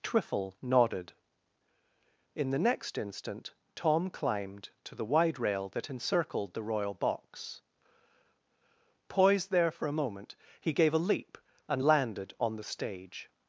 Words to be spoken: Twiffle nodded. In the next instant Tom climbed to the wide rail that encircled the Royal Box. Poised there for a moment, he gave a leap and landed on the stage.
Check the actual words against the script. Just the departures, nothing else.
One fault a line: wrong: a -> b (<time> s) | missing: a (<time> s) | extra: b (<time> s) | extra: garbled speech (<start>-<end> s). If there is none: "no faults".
no faults